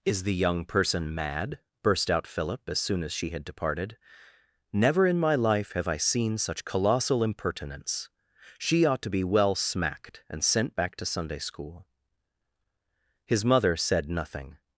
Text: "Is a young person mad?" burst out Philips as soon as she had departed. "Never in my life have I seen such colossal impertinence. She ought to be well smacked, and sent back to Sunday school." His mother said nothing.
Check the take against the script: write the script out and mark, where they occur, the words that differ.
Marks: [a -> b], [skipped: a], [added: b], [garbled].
"Is [a -> the] young person mad?" burst out [Philips -> Philip] as soon as she had departed. "Never in my life have I seen such colossal impertinence. She ought to be well smacked, and sent back to Sunday school." His mother said nothing.